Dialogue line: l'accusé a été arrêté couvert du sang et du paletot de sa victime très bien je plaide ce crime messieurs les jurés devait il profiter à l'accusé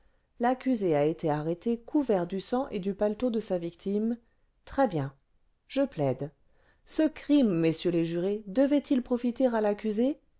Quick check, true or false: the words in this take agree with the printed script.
true